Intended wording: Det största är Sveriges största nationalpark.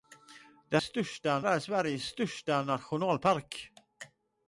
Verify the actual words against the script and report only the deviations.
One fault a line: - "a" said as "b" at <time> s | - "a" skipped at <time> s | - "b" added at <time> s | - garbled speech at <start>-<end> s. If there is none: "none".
none